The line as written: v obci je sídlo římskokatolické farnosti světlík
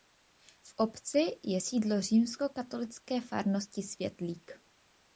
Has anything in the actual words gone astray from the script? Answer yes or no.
no